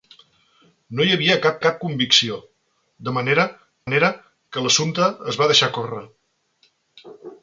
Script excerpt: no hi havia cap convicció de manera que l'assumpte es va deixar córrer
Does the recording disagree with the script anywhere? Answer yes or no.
yes